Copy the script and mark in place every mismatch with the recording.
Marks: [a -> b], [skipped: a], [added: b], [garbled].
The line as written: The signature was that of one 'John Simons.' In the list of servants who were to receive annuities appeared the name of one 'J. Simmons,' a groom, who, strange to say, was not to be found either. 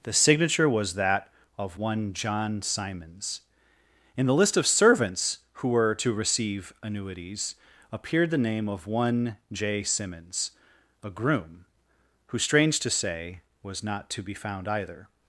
The signature was that of one 'John Simons.' In the list of servants who were to receive annuities appeared the name of one 'J. Simmons,' a groom, who, strange to say, was not to be found either.